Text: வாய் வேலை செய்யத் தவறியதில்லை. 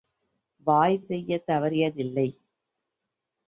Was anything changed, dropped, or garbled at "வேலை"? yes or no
yes